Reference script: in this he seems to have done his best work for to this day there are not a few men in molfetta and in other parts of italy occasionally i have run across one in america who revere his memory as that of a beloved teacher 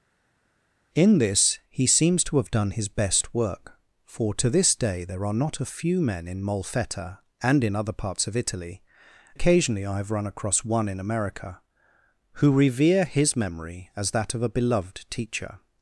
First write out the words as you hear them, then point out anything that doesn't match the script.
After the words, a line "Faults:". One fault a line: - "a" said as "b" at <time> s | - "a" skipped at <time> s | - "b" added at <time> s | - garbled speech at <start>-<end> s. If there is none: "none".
in this he seems to have done his best work for to this day there are not a few men in molfetta and in other parts of italy occasionally i have run across one in america who revere his memory as that of a beloved teacher
Faults:
none